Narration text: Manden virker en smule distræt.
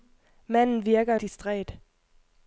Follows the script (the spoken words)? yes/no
no